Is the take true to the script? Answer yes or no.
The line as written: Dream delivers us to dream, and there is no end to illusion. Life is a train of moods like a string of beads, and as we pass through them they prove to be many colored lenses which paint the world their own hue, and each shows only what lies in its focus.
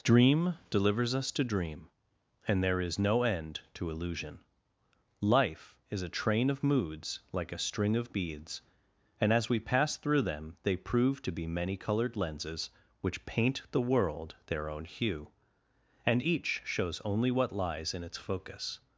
yes